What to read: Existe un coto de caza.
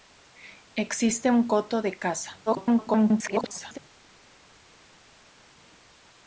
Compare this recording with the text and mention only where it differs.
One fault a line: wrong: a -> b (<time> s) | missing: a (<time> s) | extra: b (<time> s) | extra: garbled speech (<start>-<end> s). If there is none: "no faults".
extra: garbled speech (2.5-3.8 s)